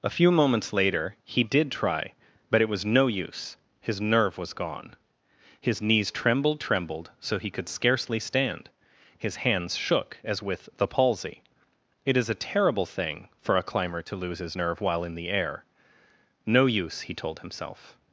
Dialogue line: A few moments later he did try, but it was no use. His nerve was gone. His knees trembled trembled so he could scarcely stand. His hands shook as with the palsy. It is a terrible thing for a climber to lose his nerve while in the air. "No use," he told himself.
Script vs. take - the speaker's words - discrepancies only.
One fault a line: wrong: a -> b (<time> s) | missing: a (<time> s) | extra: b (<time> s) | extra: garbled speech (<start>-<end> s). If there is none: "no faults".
no faults